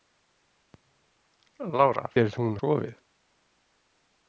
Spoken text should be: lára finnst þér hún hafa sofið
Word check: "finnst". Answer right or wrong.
wrong